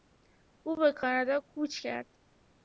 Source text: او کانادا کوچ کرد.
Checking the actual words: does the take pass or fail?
fail